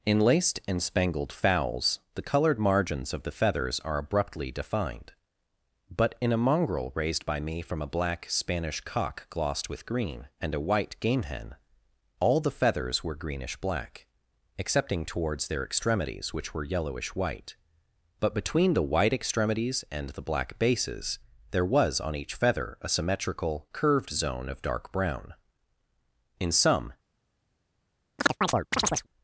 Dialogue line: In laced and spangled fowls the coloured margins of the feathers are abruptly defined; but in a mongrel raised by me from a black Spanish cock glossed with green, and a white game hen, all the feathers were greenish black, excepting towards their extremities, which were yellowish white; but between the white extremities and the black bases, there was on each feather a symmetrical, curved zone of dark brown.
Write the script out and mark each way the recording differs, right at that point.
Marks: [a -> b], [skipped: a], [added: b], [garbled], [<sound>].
In laced and spangled fowls the coloured margins of the feathers are abruptly defined; but in a mongrel raised by me from a black Spanish cock glossed with green, and a white game hen, all the feathers were greenish black, excepting towards their extremities, which were yellowish white; but between the white extremities and the black bases, there was on each feather a symmetrical, curved zone of dark brown. [added: In some] [chirp]